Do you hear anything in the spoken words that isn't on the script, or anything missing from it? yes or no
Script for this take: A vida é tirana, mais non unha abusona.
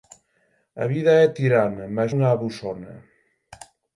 yes